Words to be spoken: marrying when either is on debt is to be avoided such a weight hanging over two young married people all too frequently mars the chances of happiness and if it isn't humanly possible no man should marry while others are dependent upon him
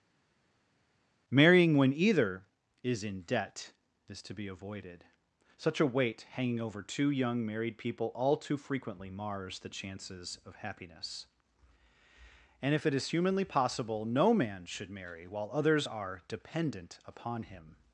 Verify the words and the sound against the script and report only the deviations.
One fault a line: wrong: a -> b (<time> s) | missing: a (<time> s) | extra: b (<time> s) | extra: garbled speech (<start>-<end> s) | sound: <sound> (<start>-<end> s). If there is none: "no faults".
wrong: on -> in (3.0 s)
wrong: isn't -> is (12.9 s)